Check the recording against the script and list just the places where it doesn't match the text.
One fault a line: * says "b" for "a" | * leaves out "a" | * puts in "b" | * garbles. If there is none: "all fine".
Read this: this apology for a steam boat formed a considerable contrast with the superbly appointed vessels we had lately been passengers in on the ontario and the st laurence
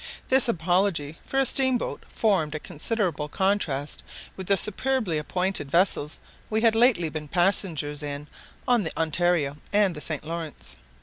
all fine